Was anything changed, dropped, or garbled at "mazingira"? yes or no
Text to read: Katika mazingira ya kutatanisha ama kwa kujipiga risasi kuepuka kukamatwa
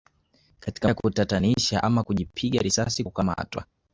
yes